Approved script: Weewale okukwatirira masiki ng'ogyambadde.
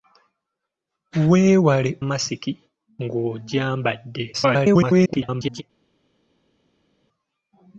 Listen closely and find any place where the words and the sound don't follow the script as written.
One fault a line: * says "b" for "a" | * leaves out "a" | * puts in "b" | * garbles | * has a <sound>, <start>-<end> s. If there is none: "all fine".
* leaves out "okukwatirira"
* garbles